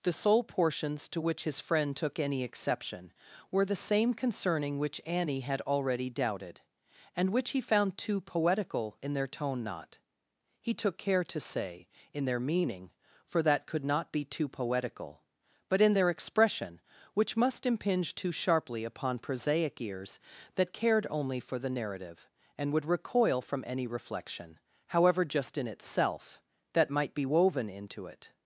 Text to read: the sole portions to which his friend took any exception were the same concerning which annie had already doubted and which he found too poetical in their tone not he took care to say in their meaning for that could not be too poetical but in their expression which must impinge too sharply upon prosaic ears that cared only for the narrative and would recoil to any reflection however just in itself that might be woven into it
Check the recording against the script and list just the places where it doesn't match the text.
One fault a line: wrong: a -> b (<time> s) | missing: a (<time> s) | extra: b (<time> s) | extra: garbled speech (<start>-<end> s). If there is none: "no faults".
wrong: to -> from (23.4 s)